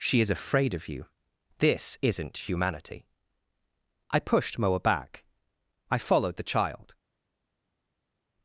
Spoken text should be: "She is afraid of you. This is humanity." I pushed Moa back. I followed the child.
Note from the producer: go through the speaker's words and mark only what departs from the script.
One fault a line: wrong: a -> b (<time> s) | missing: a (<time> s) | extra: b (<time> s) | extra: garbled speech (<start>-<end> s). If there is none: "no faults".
wrong: is -> isn't (2.0 s)